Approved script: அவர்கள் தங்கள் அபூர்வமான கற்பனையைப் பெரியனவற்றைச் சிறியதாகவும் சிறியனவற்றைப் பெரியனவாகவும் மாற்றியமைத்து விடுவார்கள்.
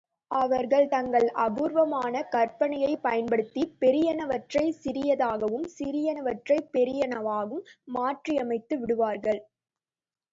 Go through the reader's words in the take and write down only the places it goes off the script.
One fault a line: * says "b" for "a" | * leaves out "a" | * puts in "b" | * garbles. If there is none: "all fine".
* puts in "பயன்படுத்திப்"